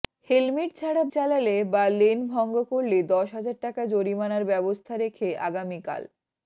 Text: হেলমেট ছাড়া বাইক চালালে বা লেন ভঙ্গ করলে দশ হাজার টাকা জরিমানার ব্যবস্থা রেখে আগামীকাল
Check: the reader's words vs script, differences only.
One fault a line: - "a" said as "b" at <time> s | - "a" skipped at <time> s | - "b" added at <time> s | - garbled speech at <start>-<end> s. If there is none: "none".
- "বাইক" skipped at 1.0 s